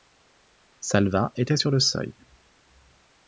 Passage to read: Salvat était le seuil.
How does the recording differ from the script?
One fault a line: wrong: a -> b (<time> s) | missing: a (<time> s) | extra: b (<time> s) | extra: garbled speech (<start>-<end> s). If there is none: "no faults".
extra: sur (1.5 s)